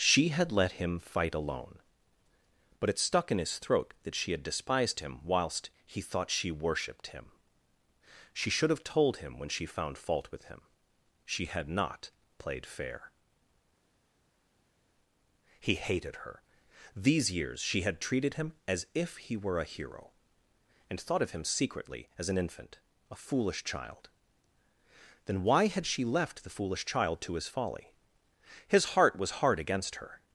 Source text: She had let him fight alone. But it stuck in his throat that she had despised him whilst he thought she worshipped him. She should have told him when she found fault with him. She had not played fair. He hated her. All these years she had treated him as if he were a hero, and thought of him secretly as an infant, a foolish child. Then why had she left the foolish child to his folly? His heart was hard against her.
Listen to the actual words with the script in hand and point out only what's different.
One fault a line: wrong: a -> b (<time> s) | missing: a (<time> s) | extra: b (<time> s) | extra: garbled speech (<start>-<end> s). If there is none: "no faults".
missing: All (16.4 s)